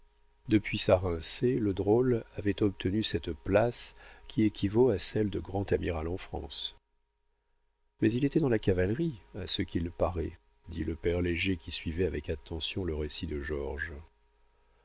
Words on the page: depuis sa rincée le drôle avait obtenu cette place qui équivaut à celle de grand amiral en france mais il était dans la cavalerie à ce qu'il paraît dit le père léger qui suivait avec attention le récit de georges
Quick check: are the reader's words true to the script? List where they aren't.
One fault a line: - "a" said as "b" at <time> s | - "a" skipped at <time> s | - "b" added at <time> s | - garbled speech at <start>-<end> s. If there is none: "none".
none